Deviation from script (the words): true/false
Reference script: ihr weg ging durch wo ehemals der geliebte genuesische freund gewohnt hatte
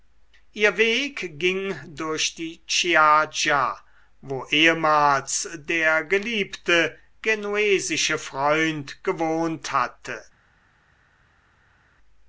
true